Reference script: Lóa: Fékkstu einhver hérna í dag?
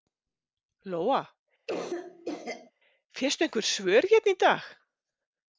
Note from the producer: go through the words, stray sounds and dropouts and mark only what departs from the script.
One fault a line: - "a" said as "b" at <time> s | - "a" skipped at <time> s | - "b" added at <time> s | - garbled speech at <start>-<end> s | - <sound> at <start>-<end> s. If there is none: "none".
- cough at 1.7-2.7 s
- "svör" added at 3.7 s